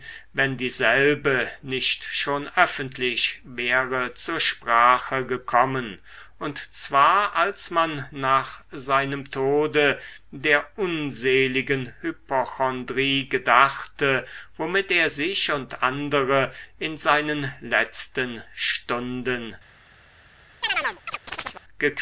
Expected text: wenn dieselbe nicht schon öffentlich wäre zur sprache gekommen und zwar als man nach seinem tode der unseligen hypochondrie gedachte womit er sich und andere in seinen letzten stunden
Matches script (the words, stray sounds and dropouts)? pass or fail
fail